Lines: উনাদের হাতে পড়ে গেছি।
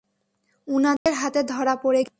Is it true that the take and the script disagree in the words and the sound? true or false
true